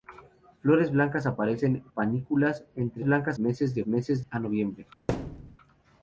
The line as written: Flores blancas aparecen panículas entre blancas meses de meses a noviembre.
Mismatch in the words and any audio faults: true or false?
true